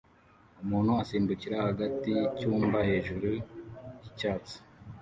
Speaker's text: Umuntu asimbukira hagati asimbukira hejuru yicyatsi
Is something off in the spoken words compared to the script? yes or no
yes